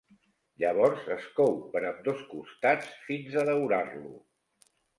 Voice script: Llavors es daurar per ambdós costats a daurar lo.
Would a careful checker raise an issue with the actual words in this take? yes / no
yes